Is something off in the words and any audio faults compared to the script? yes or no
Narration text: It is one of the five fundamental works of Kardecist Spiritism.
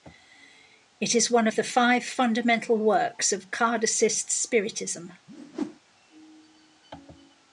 yes